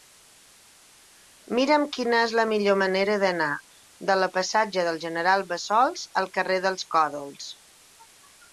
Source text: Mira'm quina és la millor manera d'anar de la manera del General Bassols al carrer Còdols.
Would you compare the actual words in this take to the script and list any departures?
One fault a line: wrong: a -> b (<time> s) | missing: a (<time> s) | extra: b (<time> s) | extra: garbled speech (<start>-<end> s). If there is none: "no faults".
wrong: manera -> passatge (4.4 s)
extra: dels (6.7 s)